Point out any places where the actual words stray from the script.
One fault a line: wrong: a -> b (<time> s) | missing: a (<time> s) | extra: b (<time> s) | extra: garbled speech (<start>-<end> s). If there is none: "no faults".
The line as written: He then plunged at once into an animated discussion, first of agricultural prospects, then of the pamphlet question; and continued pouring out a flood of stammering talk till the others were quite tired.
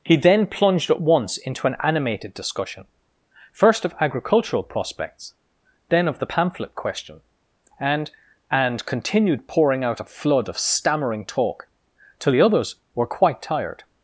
extra: and (8.5 s)